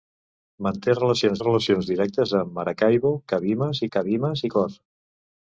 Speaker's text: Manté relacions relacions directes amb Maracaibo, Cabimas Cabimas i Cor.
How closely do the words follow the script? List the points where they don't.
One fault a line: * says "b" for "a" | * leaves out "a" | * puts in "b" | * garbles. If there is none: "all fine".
all fine